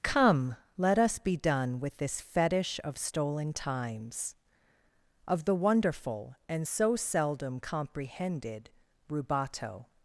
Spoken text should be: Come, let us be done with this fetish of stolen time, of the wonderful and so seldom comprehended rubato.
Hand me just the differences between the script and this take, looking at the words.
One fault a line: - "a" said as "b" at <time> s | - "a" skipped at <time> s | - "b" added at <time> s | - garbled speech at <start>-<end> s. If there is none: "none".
- "time" said as "times" at 3.5 s